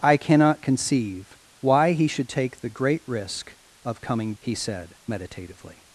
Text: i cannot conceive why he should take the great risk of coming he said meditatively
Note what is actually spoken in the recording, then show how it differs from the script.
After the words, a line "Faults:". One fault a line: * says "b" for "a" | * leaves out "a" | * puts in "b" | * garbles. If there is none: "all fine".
i cannot conceive why he should take the great risk of coming he said meditatively
Faults:
all fine